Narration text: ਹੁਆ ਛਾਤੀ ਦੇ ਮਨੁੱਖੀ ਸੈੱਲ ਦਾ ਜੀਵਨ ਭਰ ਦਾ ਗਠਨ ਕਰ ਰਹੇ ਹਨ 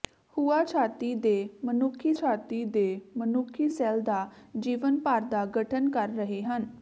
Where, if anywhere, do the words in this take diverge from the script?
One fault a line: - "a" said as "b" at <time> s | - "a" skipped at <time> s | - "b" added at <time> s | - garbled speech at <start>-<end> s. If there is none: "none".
- "ਛਾਤੀ ਦੇ ਮਨੁੱਖੀ" added at 2.1 s